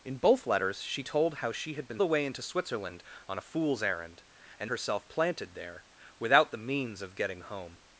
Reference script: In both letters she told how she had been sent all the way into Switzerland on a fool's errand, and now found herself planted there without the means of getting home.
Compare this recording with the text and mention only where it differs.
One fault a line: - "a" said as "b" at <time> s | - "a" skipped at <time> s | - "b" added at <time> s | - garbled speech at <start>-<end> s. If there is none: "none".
- "sent all" skipped at 2.0 s
- "now found" skipped at 4.7 s